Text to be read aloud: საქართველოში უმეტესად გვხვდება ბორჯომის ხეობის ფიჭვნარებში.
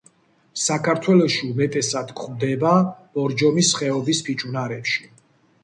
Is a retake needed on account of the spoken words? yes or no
no